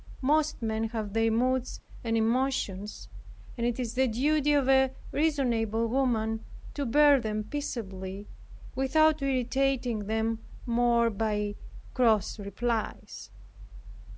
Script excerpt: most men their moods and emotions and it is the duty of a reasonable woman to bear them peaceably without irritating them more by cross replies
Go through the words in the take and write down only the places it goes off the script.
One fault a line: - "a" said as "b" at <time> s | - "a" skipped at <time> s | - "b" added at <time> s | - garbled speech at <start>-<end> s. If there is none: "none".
- "have" added at 0.8 s